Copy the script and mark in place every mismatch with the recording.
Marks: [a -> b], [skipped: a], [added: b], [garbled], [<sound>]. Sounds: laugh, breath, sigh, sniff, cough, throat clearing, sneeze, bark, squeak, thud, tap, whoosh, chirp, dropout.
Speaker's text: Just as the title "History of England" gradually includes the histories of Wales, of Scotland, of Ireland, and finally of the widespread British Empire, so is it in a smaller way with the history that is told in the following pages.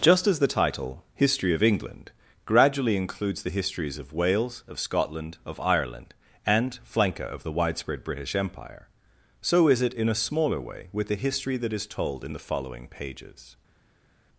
Just as the title "History of England" gradually includes the histories of Wales, of Scotland, of Ireland, and [finally -> flanker] of the widespread British Empire, so is it in a smaller way with the history that is told in the following pages.